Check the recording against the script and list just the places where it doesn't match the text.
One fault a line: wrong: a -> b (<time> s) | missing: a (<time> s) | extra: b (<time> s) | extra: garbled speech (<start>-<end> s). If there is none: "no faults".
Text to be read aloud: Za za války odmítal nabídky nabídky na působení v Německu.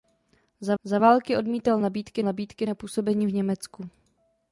no faults